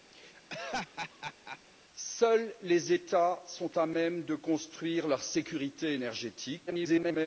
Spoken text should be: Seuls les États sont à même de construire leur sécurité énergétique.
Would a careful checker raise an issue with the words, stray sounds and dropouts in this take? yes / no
yes